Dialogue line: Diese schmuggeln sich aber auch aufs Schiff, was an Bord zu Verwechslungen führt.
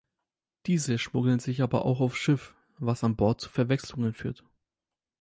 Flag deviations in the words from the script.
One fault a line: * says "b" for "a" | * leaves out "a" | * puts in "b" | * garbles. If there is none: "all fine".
all fine